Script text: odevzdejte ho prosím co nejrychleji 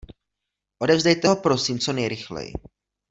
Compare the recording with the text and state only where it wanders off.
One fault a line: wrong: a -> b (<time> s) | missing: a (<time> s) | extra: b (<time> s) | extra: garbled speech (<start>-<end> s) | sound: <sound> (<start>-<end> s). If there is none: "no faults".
no faults